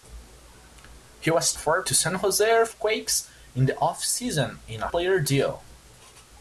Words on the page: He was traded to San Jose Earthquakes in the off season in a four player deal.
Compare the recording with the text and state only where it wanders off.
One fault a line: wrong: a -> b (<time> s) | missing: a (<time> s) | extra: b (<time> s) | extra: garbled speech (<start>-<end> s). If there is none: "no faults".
wrong: traded -> four (1.5 s)
missing: four (4.9 s)